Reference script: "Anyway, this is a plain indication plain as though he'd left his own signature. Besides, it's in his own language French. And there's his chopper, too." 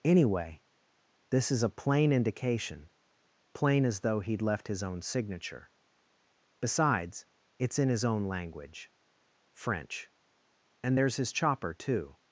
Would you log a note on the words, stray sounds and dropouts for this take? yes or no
no